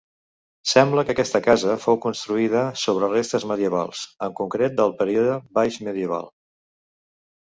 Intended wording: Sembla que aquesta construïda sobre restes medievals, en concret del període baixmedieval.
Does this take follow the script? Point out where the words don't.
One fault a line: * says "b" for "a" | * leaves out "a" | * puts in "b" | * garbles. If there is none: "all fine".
* puts in "casa fou"